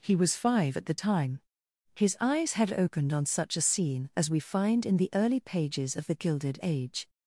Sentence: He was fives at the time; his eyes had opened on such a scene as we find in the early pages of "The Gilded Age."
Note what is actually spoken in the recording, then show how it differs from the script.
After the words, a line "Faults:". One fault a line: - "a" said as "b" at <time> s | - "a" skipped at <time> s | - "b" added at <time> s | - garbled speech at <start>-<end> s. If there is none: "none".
He was five at the time; his eyes had opened on such a scene as we find in the early pages of "The Gilded Age."
Faults:
- "fives" said as "five" at 0.3 s